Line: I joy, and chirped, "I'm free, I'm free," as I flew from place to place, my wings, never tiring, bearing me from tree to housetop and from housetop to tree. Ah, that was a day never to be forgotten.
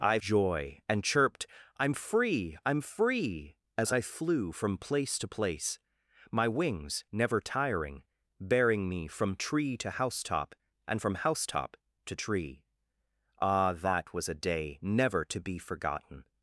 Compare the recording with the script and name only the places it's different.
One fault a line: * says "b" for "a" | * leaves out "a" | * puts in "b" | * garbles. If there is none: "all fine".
all fine